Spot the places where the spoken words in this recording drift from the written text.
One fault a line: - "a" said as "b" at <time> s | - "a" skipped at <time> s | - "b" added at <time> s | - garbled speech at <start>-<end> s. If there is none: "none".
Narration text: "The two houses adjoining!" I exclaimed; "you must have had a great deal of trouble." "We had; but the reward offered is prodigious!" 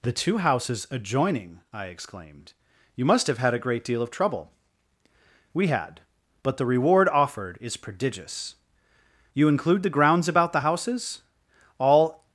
- "You include the grounds about the houses All" added at 9.3 s